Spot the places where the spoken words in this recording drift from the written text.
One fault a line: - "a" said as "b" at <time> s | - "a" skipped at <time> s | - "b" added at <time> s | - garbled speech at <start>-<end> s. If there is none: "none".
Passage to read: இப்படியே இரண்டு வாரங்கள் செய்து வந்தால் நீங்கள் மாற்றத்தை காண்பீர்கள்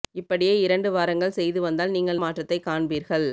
none